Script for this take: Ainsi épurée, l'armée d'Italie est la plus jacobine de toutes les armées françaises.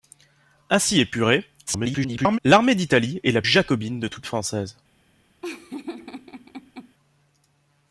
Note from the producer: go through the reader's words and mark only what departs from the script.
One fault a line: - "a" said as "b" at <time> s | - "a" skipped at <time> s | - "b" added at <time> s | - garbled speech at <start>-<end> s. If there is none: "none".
- garbled speech at 1.7-2.4 s
- "plus" skipped at 3.4 s
- "les armées" skipped at 4.3 s